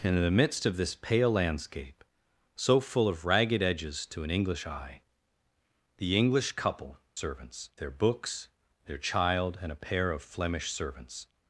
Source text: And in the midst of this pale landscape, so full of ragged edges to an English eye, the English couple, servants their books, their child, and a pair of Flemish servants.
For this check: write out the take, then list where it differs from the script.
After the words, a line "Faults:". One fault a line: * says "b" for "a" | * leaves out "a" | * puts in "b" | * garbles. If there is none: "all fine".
And in the midst of this pale landscape, so full of ragged edges to an English eye, the English couple, servants their books, their child, and a pair of Flemish servants.
Faults:
all fine